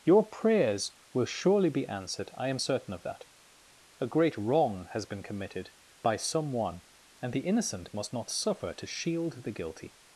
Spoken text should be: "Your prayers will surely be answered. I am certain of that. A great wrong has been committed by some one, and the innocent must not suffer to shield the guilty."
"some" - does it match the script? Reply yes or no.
yes